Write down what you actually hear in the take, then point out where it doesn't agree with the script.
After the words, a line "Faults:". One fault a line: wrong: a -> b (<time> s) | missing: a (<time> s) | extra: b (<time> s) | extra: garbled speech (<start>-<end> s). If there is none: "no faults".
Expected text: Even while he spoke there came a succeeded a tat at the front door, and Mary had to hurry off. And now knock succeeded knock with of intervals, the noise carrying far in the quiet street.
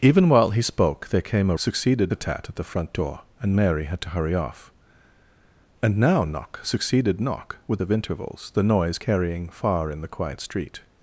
Even while he spoke there came a succeeded a tat at the front door, and Mary had to hurry off. And now knock succeeded knock with of intervals, the noise carrying far in the quiet street.
Faults:
no faults